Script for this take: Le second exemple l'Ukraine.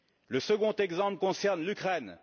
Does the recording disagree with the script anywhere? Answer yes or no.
yes